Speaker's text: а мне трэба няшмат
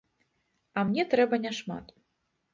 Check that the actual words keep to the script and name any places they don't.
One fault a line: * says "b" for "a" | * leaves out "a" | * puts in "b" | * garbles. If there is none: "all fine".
all fine